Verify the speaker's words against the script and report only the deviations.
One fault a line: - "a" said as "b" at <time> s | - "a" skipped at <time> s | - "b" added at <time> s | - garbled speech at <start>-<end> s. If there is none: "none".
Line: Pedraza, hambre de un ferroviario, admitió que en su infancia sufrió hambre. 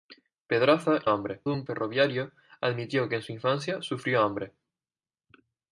none